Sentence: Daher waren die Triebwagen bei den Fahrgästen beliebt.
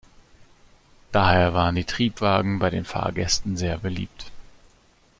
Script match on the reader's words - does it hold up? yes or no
no